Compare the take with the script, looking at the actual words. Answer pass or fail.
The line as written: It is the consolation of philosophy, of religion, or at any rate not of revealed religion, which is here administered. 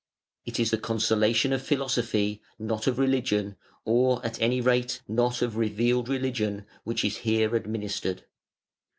fail